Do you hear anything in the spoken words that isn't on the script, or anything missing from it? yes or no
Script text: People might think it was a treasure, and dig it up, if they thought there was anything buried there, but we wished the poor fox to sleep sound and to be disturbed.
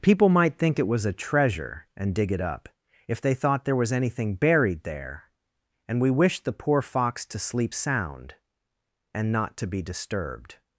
yes